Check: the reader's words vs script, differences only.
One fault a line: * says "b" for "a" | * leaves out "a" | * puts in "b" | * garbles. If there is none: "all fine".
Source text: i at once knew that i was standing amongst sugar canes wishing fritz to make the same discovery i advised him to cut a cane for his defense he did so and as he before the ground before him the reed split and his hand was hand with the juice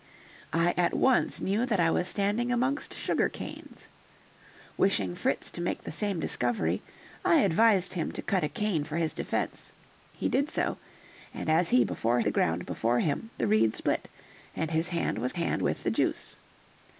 all fine